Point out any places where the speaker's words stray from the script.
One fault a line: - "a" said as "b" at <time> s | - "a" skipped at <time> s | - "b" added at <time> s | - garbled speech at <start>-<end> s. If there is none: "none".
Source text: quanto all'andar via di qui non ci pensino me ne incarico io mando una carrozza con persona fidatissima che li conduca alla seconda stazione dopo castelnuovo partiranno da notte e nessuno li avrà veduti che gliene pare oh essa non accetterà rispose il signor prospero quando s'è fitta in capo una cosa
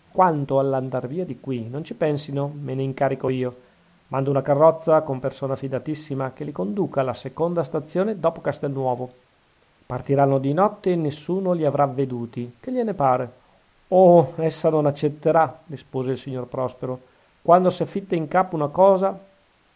- "da" said as "di" at 10.4 s